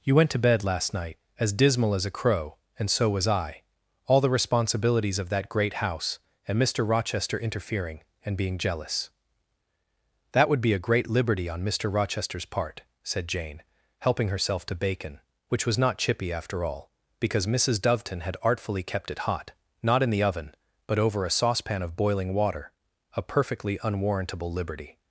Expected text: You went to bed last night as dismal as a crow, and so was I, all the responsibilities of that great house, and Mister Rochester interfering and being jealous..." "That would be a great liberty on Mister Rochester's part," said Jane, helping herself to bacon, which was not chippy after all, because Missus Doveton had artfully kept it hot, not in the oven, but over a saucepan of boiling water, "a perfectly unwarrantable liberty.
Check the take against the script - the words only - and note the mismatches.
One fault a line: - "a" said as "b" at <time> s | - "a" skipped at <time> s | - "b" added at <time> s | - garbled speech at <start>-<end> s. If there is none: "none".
none